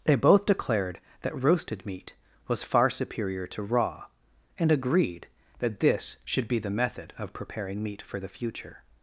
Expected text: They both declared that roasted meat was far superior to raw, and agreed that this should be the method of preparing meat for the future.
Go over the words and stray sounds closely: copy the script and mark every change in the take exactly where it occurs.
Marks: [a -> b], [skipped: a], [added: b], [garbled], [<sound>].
They both declared that roasted meat was far superior to raw, and agreed that this should be the method of preparing meat for the future.